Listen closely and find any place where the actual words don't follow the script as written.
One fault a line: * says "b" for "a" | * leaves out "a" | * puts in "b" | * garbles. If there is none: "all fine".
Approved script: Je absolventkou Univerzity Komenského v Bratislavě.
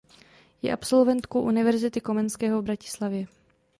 all fine